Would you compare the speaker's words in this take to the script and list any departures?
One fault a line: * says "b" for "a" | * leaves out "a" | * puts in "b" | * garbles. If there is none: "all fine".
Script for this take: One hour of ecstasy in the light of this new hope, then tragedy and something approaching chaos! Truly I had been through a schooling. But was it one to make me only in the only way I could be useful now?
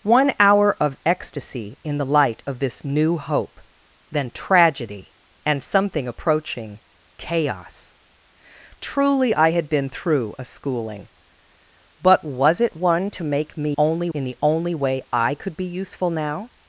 all fine